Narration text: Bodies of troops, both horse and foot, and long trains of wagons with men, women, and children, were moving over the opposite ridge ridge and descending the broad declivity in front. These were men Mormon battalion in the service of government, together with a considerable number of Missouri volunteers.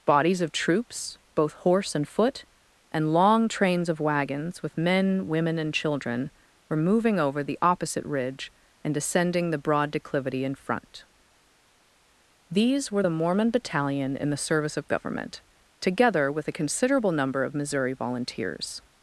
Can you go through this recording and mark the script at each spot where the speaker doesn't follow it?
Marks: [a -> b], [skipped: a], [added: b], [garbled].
Bodies of troops, both horse and foot, and long trains of wagons with men, women, and children, were moving over the opposite ridge [skipped: ridge] and descending the broad declivity in front. These were [men -> the] Mormon battalion in the service of government, together with a considerable number of Missouri volunteers.